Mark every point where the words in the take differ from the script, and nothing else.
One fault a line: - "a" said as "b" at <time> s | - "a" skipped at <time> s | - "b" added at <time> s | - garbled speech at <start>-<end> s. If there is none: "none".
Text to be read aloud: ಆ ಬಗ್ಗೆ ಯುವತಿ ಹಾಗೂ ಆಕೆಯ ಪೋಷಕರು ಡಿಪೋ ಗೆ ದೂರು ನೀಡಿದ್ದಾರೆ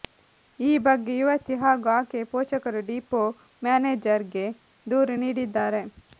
- "ಆ" said as "ಈ" at 0.6 s
- "ಮ್ಯಾನೇಜರ್" added at 3.6 s